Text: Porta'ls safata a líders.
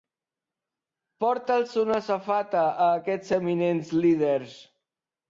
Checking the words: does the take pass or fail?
fail